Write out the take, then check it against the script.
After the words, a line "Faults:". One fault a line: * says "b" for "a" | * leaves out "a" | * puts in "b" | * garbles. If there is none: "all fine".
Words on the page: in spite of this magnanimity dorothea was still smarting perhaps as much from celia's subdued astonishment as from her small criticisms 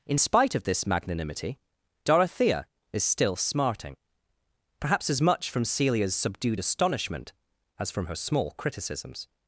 in spite of this magnanimity dorothea is still smarting perhaps as much from celia's subdued astonishment as from her small criticisms
Faults:
* says "is" for "was"